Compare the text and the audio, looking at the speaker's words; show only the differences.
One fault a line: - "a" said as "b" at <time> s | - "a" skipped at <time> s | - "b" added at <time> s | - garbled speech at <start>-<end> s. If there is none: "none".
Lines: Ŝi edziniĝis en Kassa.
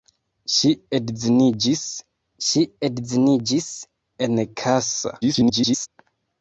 - "ŝi edziniĝis" added at 2.5 s
- garbled speech at 5.2-5.9 s